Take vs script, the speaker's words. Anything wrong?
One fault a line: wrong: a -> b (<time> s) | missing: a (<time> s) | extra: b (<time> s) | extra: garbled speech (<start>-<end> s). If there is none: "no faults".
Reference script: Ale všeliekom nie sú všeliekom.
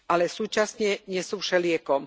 wrong: všeliekom -> súčasne (0.3 s)